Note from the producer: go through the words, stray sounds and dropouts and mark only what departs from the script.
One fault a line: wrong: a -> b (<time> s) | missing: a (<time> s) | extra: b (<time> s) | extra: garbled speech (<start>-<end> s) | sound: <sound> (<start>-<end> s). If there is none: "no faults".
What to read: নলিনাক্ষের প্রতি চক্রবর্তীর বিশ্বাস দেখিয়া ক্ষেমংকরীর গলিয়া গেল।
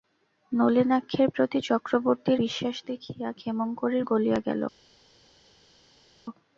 no faults